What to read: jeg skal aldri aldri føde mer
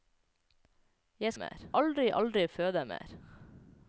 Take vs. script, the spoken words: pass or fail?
fail